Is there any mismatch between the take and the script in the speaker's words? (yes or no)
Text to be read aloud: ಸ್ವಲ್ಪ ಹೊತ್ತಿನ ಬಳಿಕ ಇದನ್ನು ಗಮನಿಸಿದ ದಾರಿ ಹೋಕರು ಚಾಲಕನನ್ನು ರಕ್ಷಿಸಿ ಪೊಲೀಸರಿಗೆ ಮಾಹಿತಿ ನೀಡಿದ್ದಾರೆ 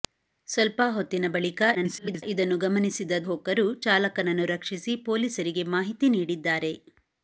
yes